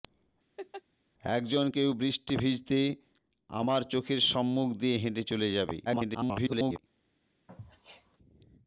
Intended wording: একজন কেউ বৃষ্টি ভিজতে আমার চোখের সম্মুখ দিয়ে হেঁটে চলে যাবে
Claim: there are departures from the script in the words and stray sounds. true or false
true